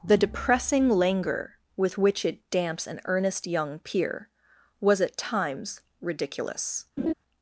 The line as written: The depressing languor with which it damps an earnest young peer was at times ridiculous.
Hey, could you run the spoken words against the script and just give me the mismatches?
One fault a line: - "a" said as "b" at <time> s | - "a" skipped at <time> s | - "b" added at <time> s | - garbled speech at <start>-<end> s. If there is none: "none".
none